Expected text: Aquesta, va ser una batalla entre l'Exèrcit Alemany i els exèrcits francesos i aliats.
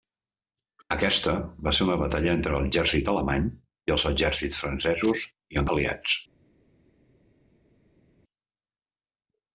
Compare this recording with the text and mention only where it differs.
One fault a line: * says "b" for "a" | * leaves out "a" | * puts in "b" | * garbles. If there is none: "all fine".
all fine